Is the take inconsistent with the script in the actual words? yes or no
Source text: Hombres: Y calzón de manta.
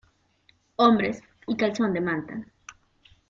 no